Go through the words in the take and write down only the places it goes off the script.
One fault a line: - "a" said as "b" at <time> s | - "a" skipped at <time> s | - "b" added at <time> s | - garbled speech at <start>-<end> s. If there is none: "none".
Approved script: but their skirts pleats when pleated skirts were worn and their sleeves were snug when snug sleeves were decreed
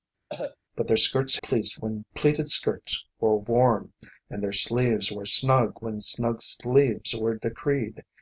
none